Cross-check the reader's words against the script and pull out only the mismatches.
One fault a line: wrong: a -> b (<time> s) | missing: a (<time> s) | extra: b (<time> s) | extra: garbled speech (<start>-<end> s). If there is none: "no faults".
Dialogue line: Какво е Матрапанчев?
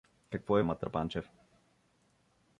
no faults